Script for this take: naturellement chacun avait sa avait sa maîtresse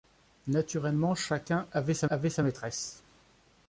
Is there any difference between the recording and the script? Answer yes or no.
no